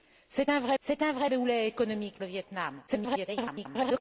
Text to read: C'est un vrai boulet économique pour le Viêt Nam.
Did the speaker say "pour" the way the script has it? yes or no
no